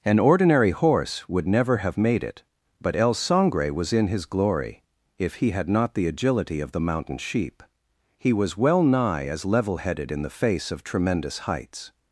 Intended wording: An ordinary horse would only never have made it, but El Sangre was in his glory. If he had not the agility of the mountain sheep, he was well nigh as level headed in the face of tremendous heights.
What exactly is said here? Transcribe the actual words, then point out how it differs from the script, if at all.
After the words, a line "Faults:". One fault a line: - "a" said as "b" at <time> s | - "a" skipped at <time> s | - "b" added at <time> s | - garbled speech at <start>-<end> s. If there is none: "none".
An ordinary horse would never have made it, but El Sangre was in his glory. If he had not the agility of the mountain sheep, he was well nigh as level headed in the face of tremendous heights.
Faults:
- "only" skipped at 1.5 s